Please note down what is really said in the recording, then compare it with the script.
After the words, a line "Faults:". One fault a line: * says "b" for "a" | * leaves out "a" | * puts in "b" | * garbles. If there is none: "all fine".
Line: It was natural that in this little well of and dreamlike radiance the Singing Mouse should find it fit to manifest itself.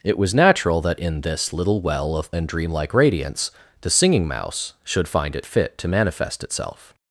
It was natural that in this little well of and dreamlike radiance the Singing Mouse should find it fit to manifest itself.
Faults:
all fine